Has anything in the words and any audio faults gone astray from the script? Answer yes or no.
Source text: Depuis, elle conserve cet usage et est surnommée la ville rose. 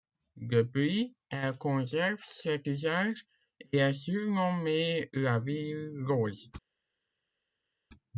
no